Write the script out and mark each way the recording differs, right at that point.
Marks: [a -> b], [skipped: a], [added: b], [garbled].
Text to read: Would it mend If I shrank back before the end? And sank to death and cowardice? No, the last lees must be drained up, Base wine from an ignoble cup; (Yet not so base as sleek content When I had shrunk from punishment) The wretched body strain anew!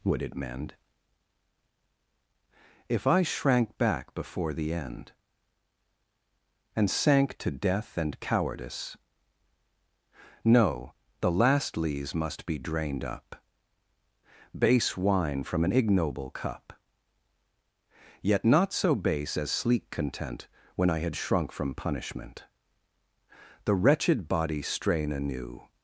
Would it mend If I shrank back before the end? And sank to death and cowardice? No, the last lees must be drained up, Base wine from an ignoble cup; (Yet not so base as sleek content When I had shrunk from punishment) The wretched body strain anew!